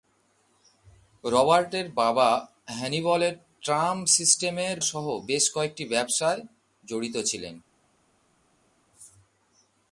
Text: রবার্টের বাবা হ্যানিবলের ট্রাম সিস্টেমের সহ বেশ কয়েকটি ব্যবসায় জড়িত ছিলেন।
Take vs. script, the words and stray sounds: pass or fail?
pass